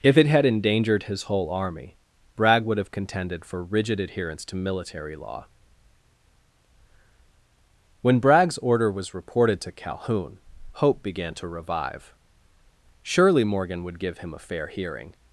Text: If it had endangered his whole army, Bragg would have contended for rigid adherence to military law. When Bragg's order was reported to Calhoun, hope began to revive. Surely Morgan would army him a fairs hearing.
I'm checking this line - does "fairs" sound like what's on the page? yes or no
no